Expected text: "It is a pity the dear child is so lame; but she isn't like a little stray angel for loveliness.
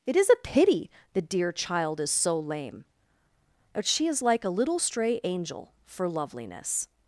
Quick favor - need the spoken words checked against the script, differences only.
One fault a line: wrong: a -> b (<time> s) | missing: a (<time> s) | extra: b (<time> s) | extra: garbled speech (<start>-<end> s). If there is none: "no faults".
wrong: isn't -> is (4.1 s)